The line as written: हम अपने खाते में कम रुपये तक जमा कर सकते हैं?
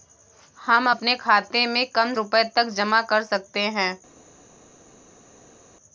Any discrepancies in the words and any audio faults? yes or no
no